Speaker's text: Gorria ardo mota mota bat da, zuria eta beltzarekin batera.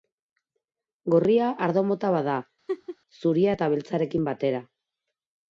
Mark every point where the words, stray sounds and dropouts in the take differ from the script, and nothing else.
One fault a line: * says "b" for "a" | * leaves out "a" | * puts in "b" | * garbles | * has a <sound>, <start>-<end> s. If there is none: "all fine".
* leaves out "mota"
* has a laugh, 2.7-3.0 s